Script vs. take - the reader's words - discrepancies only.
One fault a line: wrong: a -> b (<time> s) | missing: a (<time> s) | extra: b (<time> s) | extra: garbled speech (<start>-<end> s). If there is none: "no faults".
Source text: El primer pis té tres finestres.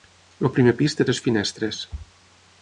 no faults